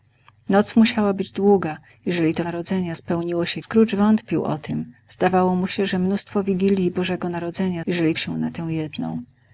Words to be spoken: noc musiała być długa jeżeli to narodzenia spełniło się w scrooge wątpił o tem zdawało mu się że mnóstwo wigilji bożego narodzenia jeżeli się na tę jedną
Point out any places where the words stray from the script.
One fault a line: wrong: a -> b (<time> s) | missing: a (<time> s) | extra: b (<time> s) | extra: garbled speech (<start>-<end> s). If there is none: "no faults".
no faults